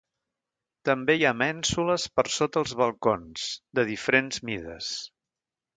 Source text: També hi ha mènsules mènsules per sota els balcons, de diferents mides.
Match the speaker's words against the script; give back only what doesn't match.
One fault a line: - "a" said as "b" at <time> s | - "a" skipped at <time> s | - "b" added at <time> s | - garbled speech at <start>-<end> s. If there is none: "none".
- "mènsules" skipped at 2.1 s